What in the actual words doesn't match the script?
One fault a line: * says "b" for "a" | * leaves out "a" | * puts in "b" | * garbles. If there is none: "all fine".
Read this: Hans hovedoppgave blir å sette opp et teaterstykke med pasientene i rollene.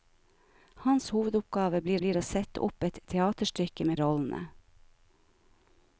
* puts in "blir"
* leaves out "pasientene i"